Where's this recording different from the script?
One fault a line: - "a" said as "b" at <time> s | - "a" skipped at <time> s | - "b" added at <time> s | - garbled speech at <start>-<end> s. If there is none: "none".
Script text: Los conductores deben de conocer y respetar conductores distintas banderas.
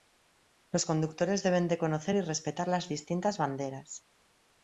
- "conductores" said as "las" at 2.7 s